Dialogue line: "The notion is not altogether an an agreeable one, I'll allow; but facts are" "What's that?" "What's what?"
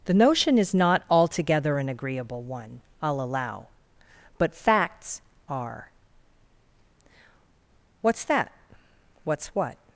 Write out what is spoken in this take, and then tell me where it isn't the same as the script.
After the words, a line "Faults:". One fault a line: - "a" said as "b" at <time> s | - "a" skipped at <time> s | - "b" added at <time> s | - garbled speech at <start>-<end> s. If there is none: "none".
"The notion is not altogether an agreeable one, I'll allow; but facts are" "What's that?" "What's what?"
Faults:
- "an" skipped at 1.9 s